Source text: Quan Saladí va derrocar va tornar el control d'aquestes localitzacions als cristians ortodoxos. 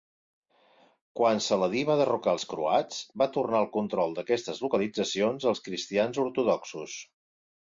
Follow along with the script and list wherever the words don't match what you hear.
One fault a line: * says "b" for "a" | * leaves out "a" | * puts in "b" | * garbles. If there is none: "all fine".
* puts in "els croats"